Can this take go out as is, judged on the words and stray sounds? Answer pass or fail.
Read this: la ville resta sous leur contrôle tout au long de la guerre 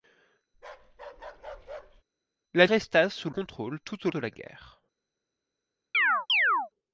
fail